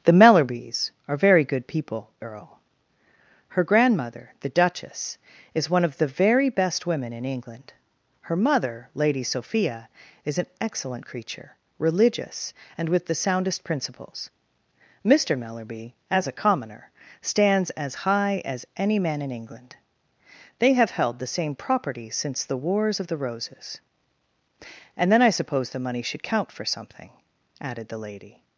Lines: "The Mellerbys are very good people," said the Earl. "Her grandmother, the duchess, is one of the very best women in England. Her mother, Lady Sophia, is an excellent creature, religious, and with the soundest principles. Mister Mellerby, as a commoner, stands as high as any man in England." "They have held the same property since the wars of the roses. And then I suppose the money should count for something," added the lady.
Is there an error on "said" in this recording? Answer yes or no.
yes